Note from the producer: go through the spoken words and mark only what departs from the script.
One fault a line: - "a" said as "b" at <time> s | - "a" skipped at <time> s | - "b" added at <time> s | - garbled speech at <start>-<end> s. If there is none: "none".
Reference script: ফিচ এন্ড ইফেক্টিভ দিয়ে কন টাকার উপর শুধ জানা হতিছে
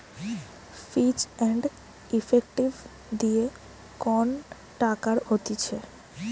- "উপর শুধ জানা" skipped at 5.2 s